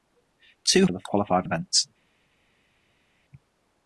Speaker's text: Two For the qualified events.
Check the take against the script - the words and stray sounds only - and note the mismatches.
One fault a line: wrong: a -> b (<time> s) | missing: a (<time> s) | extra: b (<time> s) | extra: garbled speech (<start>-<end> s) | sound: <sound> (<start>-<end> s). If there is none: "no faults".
no faults